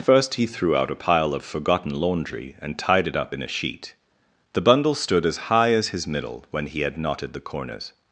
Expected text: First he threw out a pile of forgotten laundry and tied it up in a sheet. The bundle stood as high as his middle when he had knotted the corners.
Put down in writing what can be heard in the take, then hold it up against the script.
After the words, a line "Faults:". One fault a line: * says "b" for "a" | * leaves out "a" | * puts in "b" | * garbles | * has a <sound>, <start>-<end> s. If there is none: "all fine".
First he threw out a pile of forgotten laundry and tied it up in a sheet. The bundle stood as high as his middle when he had knotted the corners.
Faults:
all fine